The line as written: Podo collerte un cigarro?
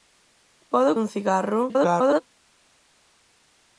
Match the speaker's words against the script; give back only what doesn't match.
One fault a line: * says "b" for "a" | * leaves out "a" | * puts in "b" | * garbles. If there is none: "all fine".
* leaves out "collerte"
* garbles